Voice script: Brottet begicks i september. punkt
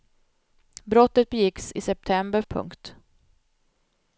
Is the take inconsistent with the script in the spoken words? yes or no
no